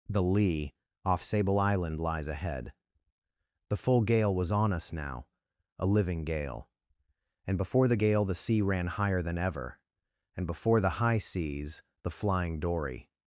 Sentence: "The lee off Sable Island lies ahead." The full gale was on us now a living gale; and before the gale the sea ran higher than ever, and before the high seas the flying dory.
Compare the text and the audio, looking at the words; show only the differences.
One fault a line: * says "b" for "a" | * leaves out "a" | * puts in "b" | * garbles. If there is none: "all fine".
all fine